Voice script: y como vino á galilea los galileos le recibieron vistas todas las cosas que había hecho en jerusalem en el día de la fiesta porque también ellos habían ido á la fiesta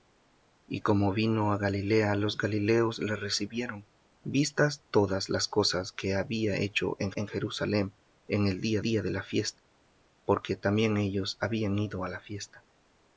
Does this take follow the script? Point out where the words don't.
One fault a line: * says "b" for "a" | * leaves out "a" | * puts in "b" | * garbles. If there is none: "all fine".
* puts in "en"
* puts in "día"